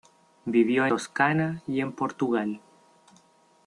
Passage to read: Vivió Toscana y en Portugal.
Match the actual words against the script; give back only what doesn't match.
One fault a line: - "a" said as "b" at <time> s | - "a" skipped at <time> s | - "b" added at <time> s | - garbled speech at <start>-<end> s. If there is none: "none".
none